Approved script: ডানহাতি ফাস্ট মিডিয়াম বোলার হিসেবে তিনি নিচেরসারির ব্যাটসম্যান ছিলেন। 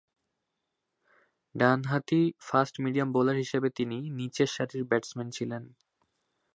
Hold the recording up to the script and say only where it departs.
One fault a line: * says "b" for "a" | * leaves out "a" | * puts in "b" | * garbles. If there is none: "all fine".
all fine